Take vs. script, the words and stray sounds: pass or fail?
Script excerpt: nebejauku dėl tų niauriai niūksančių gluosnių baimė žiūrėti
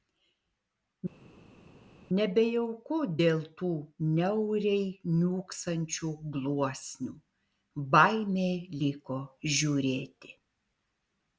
fail